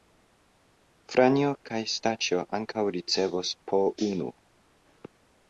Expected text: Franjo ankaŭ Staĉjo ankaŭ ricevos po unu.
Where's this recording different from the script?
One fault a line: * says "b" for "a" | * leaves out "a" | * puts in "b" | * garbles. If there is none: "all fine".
* says "kaj" for "ankaŭ"